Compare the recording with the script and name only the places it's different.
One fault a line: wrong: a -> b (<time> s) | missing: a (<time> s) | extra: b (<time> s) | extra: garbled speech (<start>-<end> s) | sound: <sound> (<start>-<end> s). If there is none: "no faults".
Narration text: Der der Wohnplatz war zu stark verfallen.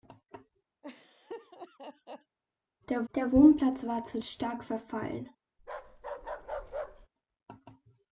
sound: laugh (0.8-2.4 s)
sound: bark (5.6-7.1 s)